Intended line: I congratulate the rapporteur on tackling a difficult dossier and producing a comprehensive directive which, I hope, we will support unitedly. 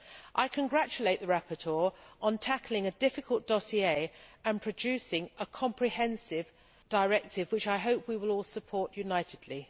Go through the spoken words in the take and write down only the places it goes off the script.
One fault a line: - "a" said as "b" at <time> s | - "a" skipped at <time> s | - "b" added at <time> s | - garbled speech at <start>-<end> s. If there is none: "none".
- "all" added at 8.3 s